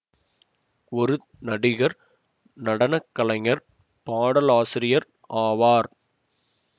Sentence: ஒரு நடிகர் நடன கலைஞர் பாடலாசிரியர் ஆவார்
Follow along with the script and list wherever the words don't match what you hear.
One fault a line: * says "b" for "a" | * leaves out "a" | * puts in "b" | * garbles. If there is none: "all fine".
all fine